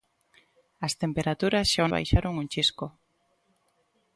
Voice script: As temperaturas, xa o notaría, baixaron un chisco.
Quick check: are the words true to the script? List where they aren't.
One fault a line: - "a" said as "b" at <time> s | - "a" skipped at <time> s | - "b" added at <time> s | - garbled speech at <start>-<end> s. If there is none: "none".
- "notaría" skipped at 1.9 s